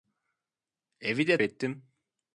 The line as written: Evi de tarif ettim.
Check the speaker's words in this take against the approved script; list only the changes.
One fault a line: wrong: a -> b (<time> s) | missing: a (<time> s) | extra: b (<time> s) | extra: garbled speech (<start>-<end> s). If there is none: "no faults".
missing: tarif (1.4 s)